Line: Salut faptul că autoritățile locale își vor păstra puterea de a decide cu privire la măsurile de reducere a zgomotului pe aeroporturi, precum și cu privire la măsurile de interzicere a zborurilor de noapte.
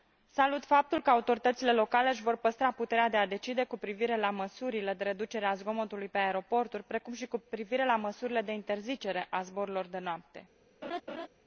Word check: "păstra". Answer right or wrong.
right